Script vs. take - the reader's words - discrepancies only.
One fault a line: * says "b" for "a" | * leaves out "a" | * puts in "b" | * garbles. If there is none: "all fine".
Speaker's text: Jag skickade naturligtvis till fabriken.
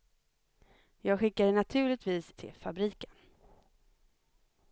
all fine